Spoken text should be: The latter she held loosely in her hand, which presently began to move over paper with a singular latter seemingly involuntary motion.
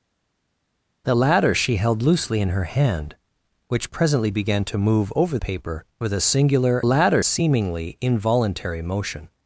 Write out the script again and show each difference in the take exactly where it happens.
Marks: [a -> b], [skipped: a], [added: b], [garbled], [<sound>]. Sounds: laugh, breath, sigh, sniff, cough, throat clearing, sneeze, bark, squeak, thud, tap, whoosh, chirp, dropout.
The latter she held loosely in her hand, which presently began to move over paper with a singular latter seemingly involuntary motion.